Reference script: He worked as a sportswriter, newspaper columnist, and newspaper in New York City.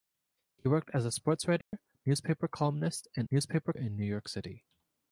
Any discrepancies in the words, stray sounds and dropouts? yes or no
yes